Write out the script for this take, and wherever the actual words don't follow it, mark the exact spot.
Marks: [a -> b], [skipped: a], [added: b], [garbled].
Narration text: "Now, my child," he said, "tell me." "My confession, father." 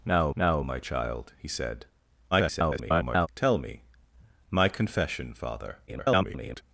"Now, [added: now] my child," he said, [garbled] "tell me." "My confession, father." [garbled]